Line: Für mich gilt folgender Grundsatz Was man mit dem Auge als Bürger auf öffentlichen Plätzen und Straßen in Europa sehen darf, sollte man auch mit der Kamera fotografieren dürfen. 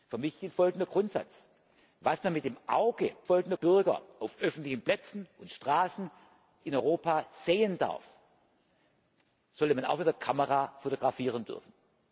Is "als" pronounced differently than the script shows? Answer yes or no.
yes